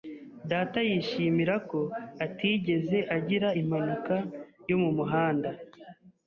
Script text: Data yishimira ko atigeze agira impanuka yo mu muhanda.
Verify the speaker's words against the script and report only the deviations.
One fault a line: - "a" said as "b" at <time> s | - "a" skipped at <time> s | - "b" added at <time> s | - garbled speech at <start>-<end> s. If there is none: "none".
none